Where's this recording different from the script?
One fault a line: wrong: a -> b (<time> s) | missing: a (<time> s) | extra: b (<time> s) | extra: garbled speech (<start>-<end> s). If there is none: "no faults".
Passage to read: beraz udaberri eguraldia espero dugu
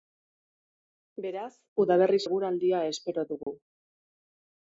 no faults